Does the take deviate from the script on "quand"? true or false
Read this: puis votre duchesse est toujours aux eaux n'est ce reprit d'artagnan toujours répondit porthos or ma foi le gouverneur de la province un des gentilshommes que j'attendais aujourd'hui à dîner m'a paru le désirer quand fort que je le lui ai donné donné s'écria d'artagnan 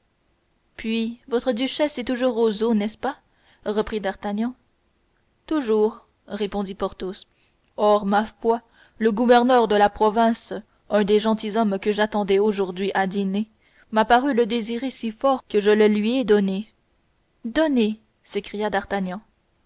true